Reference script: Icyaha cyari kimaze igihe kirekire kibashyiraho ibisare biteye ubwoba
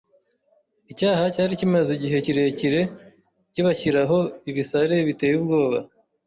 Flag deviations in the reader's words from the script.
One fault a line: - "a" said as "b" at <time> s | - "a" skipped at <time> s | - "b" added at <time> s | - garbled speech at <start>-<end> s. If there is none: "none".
none